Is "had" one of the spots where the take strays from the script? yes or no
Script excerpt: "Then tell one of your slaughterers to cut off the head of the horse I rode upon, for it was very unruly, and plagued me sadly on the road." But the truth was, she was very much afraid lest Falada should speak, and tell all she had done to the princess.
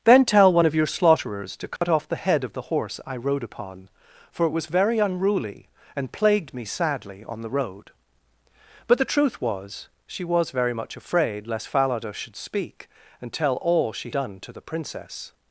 yes